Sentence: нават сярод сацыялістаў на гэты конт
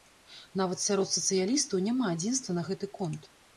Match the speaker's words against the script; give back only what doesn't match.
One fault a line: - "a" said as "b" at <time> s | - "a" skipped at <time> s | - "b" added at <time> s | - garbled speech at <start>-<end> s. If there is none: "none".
- "няма адзінства" added at 1.9 s